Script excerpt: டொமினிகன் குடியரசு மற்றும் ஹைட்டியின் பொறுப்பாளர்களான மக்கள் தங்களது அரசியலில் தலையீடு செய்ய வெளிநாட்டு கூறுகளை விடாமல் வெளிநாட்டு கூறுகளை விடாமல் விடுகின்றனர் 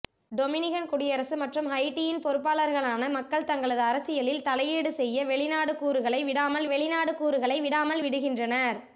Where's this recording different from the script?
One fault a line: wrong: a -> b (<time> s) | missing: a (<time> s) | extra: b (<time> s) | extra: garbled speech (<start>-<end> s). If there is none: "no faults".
no faults